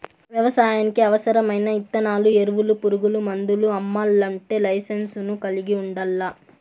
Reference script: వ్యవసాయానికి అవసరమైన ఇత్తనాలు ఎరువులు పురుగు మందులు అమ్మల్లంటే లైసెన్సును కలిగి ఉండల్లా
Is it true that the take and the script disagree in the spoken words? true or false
false